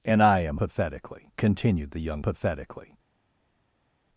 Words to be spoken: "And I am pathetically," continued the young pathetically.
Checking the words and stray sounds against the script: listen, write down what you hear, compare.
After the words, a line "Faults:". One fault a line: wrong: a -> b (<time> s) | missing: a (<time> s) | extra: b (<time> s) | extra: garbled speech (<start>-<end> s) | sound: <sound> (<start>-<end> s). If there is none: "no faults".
"And I am pathetically," continued the young pathetically.
Faults:
no faults